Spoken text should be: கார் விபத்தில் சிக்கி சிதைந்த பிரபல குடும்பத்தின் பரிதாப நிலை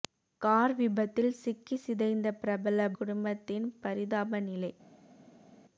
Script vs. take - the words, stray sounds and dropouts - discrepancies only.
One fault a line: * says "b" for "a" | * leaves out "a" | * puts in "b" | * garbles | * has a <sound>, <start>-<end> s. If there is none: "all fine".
all fine